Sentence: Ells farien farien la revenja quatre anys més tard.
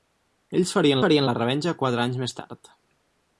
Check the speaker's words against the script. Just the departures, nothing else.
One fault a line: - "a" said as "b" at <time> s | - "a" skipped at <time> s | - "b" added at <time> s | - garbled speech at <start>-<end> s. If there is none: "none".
none